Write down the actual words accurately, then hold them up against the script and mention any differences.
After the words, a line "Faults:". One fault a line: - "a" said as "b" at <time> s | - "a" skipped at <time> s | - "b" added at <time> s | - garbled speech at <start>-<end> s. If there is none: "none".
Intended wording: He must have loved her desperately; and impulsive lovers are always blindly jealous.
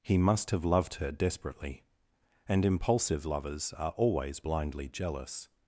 He must have loved her desperately; and impulsive lovers are always blindly jealous.
Faults:
none